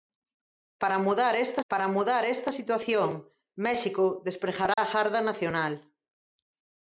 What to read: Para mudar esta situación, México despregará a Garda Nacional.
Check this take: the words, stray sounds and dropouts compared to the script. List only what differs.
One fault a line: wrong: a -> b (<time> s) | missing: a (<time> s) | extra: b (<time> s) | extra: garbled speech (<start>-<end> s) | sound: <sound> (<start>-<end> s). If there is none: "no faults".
extra: para mudar esta (1.7 s)
sound: dropout (4.7-4.8 s)